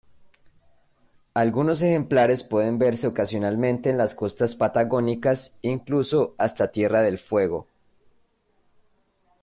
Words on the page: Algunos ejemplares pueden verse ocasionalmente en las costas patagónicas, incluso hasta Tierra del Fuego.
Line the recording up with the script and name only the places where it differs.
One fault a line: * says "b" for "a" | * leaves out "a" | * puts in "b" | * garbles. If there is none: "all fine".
all fine